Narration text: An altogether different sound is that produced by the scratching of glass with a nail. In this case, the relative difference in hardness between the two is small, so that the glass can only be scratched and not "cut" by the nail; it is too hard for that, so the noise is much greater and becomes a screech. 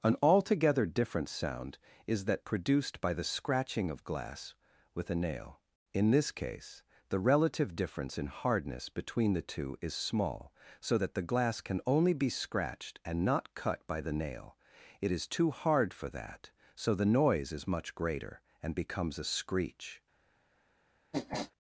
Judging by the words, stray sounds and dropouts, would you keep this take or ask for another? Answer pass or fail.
fail